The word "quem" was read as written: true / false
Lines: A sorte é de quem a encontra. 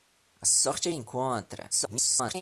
false